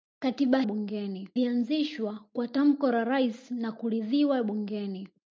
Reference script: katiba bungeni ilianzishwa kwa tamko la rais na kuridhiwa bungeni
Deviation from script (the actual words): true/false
false